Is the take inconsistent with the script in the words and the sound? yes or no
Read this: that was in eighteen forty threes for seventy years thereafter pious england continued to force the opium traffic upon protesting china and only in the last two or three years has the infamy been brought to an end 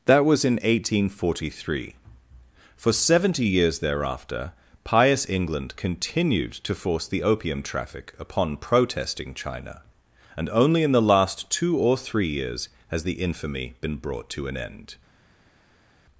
yes